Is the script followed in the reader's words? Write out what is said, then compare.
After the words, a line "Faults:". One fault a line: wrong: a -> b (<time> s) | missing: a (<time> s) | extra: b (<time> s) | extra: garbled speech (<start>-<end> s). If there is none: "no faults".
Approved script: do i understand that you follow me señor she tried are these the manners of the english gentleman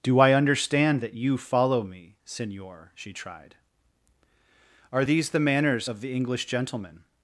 do i understand that you follow me señor she tried are these the manners of the english gentleman
Faults:
no faults